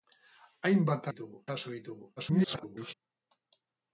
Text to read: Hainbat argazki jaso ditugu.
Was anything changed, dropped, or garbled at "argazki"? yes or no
yes